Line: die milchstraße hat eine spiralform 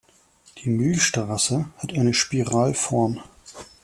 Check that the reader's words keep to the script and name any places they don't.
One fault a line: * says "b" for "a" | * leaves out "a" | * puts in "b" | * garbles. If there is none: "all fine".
all fine